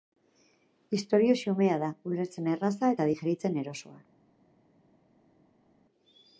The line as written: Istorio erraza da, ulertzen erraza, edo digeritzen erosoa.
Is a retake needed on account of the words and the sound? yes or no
yes